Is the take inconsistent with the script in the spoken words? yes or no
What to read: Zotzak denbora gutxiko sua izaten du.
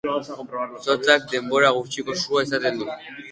no